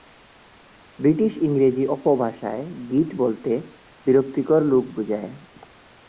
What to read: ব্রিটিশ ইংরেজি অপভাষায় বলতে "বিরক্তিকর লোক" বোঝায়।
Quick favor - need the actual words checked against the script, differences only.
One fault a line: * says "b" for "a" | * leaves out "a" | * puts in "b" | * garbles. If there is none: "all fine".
* puts in "গিট"